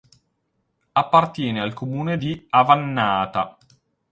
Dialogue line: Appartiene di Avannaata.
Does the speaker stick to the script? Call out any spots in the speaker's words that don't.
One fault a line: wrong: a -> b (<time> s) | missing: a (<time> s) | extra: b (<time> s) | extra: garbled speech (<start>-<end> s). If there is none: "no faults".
extra: al comune (1.6 s)